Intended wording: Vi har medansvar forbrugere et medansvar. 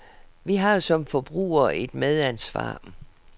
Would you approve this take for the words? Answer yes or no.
no